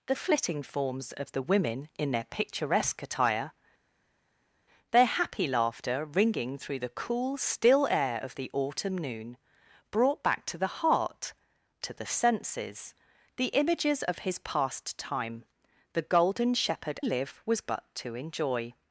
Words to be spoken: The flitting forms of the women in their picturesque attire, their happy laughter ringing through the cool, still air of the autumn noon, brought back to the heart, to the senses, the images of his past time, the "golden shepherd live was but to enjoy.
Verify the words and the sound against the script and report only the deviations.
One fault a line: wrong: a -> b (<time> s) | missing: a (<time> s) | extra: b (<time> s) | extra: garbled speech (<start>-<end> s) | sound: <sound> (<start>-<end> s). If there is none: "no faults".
no faults